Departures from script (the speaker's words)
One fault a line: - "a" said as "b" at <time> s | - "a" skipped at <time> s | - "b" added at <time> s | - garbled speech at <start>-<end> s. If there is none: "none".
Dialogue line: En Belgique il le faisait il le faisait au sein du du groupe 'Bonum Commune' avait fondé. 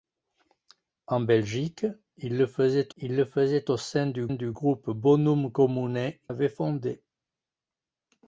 none